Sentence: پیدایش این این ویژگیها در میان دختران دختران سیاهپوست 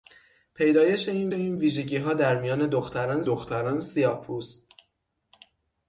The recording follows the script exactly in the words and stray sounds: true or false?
true